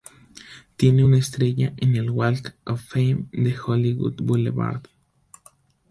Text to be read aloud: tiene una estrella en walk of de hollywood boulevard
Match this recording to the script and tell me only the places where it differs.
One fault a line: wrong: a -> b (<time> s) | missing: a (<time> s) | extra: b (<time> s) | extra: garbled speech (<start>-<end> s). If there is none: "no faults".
extra: el (2.0 s)
extra: fame (2.8 s)